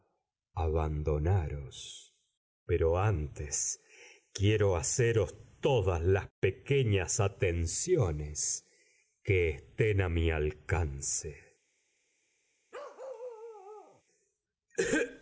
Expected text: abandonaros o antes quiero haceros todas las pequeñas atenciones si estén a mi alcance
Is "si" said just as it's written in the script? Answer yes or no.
no